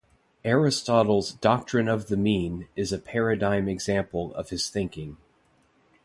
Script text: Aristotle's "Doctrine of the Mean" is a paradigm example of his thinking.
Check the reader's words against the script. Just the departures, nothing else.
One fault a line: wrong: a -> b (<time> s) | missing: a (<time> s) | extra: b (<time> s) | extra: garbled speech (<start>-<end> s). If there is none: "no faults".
no faults